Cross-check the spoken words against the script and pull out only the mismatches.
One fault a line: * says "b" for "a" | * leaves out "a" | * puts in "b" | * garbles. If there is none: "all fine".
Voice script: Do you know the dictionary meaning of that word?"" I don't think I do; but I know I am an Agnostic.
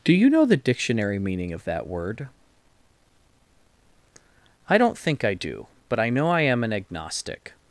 all fine